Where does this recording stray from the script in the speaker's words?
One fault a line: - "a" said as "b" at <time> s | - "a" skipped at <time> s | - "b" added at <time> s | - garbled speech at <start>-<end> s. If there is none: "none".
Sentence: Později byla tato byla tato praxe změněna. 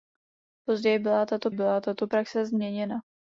none